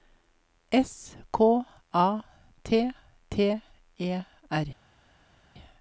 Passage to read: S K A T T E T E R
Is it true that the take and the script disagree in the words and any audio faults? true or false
true